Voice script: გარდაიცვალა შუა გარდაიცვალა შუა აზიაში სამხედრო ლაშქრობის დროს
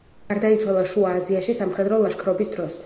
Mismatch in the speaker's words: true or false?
true